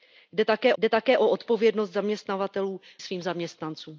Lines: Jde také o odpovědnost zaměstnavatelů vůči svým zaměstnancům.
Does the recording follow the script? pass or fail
fail